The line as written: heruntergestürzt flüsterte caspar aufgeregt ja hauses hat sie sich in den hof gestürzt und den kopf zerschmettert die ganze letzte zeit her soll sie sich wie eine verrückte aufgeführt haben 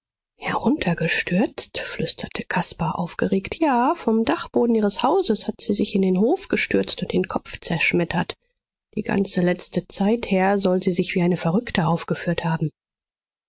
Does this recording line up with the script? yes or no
no